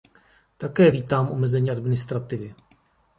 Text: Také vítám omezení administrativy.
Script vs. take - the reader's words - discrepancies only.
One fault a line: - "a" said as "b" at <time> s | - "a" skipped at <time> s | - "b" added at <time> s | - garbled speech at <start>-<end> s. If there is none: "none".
none